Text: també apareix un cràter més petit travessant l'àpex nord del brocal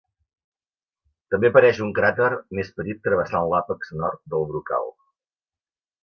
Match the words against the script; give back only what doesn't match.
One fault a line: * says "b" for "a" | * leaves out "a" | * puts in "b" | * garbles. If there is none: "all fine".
all fine